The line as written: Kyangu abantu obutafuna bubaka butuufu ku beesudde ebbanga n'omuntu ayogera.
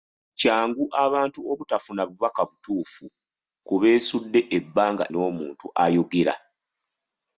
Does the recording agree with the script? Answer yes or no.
yes